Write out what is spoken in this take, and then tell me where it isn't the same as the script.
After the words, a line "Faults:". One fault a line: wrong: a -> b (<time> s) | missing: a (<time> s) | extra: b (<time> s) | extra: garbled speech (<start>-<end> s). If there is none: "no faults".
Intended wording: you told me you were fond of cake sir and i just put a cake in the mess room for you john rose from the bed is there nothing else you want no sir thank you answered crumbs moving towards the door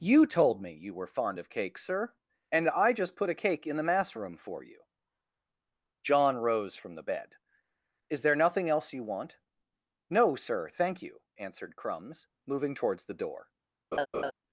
you told me you were fond of cake sir and i just put a cake in the mass room for you john rose from the bed is there nothing else you want no sir thank you answered crumbs moving towards the door
Faults:
wrong: mess -> mass (3.8 s)